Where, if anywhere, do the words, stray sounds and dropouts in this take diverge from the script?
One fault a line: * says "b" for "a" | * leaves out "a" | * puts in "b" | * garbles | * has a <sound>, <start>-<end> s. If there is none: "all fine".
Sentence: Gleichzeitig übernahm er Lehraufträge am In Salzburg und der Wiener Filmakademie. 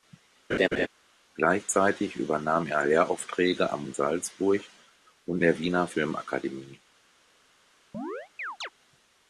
* has a laugh, 0.5-0.9 s
* has a chirp, 7.9-8.7 s